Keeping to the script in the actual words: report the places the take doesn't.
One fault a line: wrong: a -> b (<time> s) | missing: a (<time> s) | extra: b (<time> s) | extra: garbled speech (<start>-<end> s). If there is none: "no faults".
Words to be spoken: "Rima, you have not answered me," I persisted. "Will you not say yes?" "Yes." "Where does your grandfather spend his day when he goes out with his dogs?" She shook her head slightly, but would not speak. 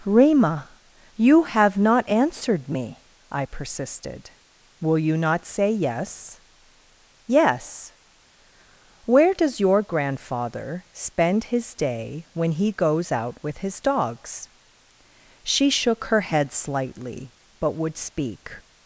missing: not (18.0 s)